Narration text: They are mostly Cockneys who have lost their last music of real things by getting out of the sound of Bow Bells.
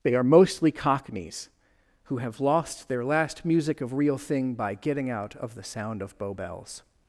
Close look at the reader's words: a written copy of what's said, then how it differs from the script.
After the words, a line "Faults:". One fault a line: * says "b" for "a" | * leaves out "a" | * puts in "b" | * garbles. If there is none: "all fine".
They are mostly Cockneys who have lost their last music of real thing by getting out of the sound of Bow Bells.
Faults:
* says "thing" for "things"